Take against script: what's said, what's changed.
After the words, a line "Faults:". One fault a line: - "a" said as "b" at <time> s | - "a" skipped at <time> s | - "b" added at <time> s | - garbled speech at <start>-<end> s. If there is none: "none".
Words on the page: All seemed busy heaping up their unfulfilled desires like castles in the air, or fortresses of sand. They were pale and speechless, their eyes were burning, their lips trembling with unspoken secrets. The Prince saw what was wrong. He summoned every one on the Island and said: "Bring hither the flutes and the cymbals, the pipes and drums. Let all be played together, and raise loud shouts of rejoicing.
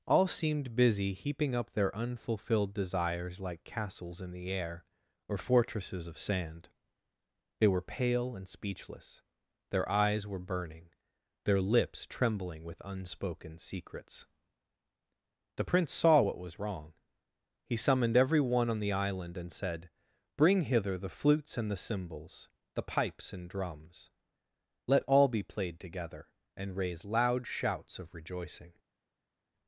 All seemed busy heaping up their unfulfilled desires like castles in the air, or fortresses of sand. They were pale and speechless, their eyes were burning, their lips trembling with unspoken secrets. The Prince saw what was wrong. He summoned every one on the Island and said: "Bring hither the flutes and the cymbals, the pipes and drums. Let all be played together, and raise loud shouts of rejoicing.
Faults:
none